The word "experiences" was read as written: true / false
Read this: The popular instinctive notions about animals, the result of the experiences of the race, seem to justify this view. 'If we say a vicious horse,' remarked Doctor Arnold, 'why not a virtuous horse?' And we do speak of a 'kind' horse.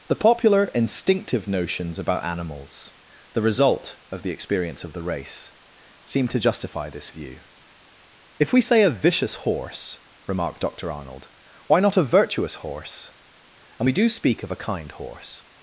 false